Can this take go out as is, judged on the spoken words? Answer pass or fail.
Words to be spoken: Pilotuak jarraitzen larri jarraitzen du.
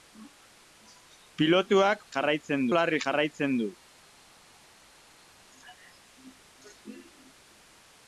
pass